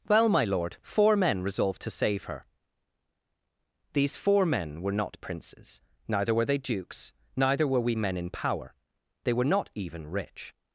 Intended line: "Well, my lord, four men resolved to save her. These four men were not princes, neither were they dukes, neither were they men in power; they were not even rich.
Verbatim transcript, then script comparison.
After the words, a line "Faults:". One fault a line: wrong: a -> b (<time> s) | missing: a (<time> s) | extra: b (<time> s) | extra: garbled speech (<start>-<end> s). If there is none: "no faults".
"Well, my lord, four men resolved to save her. These four men were not princes, neither were they dukes, neither were we men in power; they were not even rich.
Faults:
wrong: they -> we (7.8 s)